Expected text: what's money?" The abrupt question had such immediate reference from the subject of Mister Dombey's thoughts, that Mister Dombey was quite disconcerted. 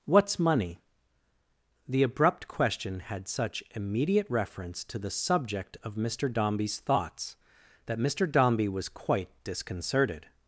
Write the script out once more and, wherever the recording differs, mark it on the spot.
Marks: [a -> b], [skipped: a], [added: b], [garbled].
what's money?" The abrupt question had such immediate reference [from -> to] the subject of Mister Dombey's thoughts, that Mister Dombey was quite disconcerted.